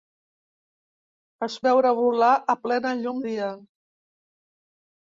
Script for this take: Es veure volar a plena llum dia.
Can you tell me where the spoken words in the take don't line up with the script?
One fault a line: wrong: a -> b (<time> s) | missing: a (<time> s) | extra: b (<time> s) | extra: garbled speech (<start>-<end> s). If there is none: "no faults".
no faults